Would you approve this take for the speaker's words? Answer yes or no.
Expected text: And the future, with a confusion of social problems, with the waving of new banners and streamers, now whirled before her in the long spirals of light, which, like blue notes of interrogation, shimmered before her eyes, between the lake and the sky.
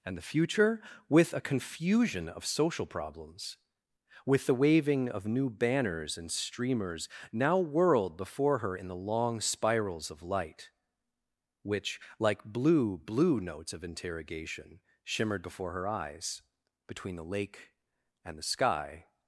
no